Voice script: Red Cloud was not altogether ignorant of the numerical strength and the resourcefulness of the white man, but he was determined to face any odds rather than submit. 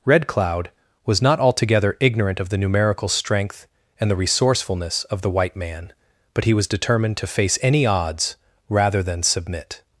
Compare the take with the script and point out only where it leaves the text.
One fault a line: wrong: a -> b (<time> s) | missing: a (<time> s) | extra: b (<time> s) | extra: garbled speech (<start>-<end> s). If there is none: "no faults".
no faults